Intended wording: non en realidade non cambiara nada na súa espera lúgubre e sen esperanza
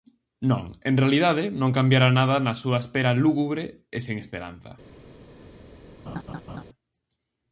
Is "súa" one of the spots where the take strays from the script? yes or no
no